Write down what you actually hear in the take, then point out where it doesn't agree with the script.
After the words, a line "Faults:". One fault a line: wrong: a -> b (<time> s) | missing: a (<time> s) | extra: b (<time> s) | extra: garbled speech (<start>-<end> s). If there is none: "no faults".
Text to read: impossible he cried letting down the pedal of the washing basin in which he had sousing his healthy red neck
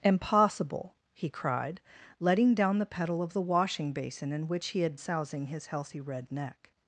impossible he cried letting down the pedal of the washing basin in which he had sousing his healthy red neck
Faults:
no faults